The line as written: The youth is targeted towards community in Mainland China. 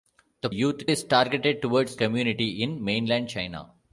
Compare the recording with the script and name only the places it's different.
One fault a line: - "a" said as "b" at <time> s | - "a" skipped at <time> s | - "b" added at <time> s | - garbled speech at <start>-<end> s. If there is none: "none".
none